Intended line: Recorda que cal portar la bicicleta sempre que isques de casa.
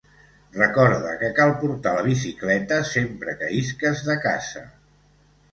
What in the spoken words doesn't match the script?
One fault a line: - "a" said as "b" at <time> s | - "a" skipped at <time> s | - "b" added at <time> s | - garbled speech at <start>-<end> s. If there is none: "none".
none